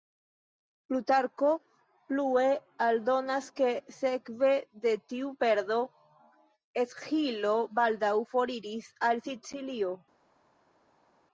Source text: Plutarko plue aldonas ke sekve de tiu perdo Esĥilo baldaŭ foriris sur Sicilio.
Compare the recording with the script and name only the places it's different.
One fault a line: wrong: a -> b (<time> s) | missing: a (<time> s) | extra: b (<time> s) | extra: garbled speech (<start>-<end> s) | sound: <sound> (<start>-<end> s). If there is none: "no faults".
wrong: sur -> al (9.1 s)